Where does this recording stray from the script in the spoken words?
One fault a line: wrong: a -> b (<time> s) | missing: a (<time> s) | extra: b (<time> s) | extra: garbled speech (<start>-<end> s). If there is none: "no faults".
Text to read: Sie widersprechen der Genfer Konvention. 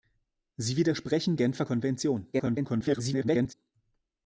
missing: der (1.4 s)
extra: garbled speech (2.3-3.5 s)